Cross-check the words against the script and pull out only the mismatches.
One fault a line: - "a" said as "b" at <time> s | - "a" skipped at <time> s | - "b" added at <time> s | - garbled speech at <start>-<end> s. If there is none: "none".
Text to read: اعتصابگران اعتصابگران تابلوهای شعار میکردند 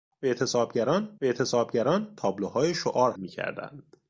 none